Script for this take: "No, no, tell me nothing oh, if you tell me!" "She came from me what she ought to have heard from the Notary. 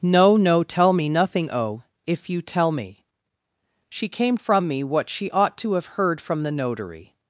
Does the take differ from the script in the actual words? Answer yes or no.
no